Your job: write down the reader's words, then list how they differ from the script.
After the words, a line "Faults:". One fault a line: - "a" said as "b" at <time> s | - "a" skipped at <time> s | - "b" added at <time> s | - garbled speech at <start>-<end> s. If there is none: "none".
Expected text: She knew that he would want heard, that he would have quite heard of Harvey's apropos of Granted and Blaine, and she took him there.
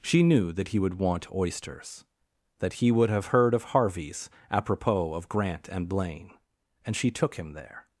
She knew that he would want oysters, that he would have heard of Harvey's apropos of Grant and Blaine, and she took him there.
Faults:
- "heard" said as "oysters" at 1.3 s
- "quite" skipped at 3.3 s
- "Granted" said as "Grant" at 5.3 s